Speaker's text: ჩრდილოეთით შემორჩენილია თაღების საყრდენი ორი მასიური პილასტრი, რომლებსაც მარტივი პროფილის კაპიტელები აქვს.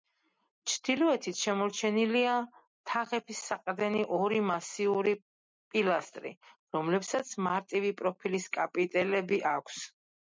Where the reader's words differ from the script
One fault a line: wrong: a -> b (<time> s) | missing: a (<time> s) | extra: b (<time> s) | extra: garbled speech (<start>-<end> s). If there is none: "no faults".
no faults